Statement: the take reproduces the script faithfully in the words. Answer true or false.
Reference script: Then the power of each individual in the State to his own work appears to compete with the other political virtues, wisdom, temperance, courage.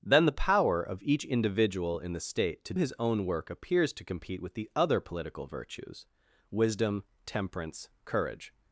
true